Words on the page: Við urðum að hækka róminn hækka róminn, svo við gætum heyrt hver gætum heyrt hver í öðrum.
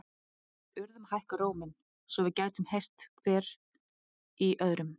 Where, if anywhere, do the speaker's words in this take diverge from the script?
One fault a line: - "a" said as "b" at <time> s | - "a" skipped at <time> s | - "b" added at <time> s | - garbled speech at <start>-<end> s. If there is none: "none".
- "hækka róminn" skipped at 1.8 s
- "gætum heyrt hver" skipped at 3.5 s